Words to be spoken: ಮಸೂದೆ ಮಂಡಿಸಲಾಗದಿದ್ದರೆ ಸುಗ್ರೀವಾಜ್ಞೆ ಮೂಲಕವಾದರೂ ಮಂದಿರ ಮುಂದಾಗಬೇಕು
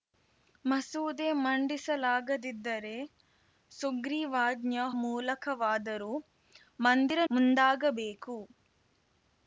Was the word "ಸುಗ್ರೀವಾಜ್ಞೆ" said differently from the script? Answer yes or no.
no